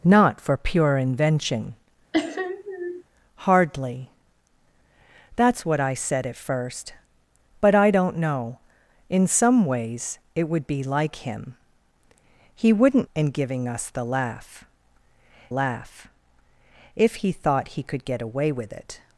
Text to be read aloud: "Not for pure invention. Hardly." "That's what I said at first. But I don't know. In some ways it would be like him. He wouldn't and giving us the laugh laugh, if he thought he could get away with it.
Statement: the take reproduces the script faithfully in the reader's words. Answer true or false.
true